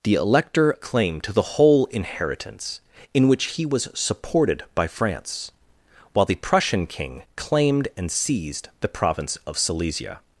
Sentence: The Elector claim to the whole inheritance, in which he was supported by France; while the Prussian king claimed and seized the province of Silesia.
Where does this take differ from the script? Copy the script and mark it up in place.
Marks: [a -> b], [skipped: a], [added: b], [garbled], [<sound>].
The Elector claim to the whole inheritance, in which he was supported by France; while the Prussian king claimed and seized the province of Silesia.